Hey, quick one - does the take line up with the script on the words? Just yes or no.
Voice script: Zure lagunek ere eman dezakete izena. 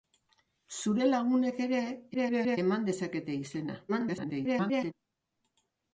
no